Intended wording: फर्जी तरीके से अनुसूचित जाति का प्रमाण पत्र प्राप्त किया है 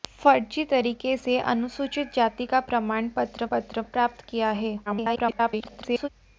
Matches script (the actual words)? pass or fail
fail